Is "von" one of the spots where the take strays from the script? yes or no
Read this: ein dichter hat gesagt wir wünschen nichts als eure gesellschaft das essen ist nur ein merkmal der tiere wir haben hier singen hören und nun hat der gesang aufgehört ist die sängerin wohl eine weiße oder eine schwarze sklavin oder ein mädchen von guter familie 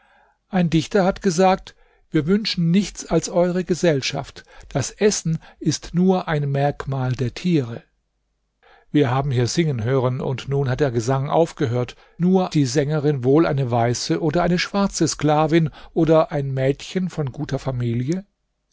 no